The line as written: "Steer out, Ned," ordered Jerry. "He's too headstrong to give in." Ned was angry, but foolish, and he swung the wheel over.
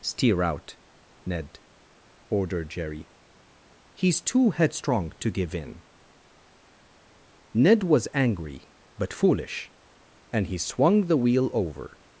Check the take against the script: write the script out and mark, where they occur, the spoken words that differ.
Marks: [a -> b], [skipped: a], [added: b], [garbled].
"Steer out, Ned," ordered Jerry. "He's too headstrong to give in." Ned was angry, but foolish, and he swung the wheel over.